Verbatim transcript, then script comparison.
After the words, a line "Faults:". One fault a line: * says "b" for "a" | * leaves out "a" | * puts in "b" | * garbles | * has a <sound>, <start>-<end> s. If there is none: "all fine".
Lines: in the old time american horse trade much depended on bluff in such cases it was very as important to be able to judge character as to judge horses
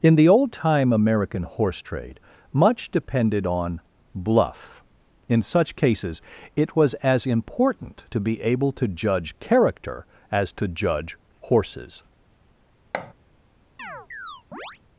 in the old time american horse trade much depended on bluff in such cases it was as important to be able to judge character as to judge horses
Faults:
* leaves out "very"
* has a thud, 12.9-13.1 s
* has a chirp, 13.8-14.8 s